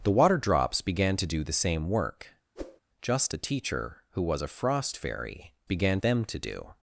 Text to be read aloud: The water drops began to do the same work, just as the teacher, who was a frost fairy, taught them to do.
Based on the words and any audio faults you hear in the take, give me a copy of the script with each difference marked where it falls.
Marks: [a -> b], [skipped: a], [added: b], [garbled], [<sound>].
The water drops began to do the same work, [whoosh] just [skipped: as] the teacher, who was a frost fairy, [taught -> began] them to do.